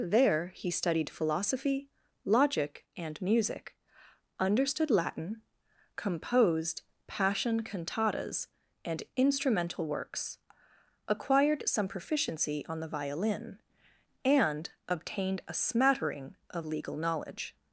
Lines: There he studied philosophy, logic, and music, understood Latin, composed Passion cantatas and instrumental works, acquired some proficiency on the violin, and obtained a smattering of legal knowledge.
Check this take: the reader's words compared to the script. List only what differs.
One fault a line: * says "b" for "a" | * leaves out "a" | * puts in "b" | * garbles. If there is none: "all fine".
all fine